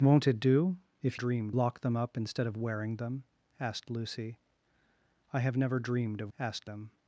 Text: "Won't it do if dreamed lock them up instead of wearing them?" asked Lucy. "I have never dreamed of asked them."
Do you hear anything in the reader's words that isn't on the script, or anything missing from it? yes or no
no